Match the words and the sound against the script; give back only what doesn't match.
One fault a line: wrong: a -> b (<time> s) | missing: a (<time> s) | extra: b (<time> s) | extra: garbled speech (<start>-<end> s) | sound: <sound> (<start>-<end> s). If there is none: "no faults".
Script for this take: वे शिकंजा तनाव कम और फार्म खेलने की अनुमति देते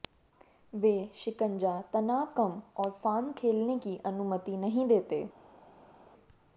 extra: नहीं (4.6 s)